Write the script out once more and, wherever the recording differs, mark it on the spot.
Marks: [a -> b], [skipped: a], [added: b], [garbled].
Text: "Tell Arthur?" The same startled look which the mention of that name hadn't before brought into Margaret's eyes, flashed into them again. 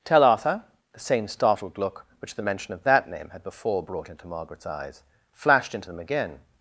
"Tell Arthur?" The same startled look which the mention of that name [hadn't -> had] before brought into Margaret's eyes, flashed into them again.